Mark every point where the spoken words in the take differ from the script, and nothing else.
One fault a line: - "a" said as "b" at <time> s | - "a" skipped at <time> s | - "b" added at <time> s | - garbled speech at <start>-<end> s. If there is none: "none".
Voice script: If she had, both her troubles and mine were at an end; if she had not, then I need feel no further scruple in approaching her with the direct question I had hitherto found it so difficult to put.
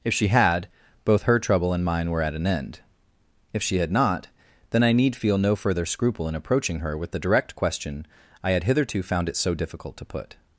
- "troubles" said as "trouble" at 1.4 s